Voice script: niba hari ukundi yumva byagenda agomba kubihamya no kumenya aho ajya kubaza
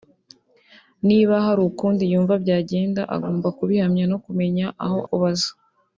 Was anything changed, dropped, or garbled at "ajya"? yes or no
yes